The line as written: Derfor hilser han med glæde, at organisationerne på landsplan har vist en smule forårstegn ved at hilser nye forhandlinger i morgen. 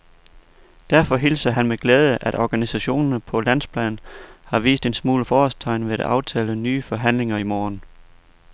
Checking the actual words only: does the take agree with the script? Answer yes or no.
no